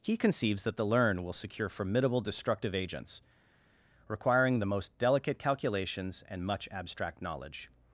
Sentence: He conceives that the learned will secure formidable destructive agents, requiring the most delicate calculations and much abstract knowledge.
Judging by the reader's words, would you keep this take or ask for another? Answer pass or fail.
fail